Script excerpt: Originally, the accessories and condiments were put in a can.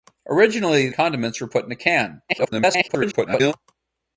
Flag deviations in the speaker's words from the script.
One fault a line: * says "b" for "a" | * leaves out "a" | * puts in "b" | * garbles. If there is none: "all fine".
* leaves out "the accessories and"
* garbles